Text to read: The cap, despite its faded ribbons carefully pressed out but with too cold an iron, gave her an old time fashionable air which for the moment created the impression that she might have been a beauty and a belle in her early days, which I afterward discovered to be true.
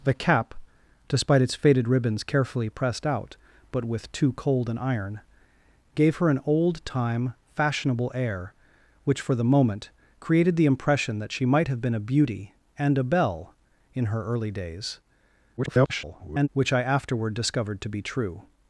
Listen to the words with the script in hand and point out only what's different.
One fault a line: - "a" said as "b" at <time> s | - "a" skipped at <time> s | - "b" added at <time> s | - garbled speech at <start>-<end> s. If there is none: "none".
- garbled speech at 15.6-16.5 s